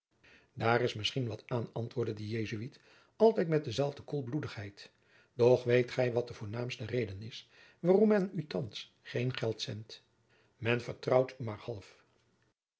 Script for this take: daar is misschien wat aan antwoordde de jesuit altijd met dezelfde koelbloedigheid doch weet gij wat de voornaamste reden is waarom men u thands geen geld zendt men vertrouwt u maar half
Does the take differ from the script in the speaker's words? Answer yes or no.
no